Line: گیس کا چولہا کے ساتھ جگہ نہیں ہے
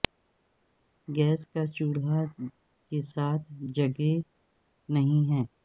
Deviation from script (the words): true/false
false